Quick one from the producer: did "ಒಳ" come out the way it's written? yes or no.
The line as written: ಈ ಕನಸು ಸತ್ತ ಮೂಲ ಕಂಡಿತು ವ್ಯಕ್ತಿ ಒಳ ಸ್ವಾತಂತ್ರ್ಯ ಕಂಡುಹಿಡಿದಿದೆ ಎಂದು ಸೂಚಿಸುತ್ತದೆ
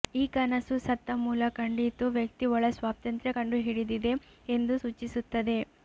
yes